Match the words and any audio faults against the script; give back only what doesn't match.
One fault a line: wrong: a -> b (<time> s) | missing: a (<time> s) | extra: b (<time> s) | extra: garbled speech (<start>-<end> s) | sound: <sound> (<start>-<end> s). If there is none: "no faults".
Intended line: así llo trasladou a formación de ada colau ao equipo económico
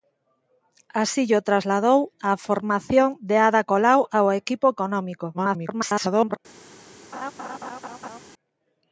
extra: garbled speech (5.3-6.4 s)
sound: laugh (7.1-8.2 s)